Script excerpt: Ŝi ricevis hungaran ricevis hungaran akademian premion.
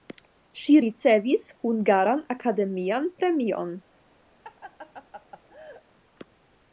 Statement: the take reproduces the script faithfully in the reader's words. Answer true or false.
false